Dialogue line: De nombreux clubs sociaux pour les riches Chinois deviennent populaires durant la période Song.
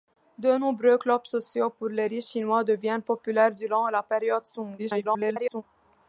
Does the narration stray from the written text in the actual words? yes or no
yes